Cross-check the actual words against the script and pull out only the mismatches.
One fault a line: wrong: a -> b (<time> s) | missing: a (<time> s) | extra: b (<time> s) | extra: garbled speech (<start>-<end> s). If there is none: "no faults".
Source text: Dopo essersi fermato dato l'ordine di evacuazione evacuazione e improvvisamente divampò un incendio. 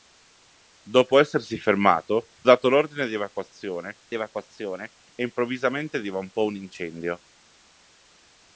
no faults